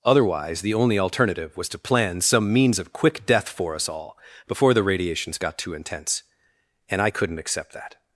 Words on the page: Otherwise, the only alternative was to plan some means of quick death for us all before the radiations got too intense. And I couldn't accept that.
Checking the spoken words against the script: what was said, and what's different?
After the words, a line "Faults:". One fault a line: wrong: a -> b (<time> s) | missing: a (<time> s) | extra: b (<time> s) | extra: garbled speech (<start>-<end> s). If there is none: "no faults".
Otherwise, the only alternative was to plan some means of quick death for us all before the radiations got too intense. And I couldn't accept that.
Faults:
no faults